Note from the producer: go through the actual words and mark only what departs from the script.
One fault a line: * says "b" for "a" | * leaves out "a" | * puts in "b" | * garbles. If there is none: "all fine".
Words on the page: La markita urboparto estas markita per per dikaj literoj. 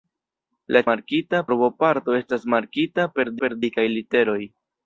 all fine